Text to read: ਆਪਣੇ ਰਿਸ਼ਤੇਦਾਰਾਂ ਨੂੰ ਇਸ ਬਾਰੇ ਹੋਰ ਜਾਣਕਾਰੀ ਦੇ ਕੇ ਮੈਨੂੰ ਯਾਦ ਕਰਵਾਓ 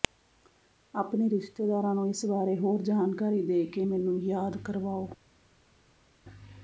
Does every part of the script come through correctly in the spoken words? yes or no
yes